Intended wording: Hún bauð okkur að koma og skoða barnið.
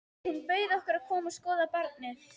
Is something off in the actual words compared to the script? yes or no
no